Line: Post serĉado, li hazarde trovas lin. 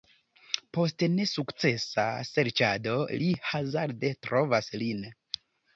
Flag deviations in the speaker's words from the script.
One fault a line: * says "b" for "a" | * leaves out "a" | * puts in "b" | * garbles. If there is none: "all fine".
* puts in "nesukcesa"